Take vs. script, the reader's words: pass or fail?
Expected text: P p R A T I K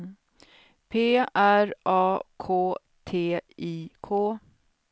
fail